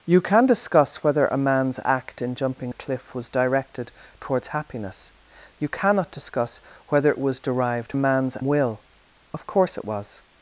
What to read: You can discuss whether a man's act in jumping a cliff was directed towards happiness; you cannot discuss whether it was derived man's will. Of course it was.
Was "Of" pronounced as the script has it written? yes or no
yes